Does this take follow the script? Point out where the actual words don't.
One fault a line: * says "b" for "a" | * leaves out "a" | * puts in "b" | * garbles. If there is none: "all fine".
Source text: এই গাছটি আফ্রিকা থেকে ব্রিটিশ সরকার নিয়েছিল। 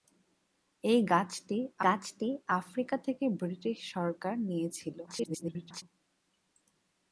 * puts in "গাছটি"
* garbles